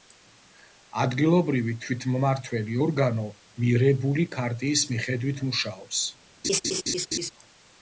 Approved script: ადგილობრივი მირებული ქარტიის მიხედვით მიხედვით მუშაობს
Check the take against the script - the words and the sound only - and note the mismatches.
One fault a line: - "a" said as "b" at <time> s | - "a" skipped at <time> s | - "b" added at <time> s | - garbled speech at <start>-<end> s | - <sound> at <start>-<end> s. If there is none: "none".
- "თვითმმართველი ორგანო" added at 1.8 s
- "მიხედვით" skipped at 5.4 s
- laugh at 6.4-7.3 s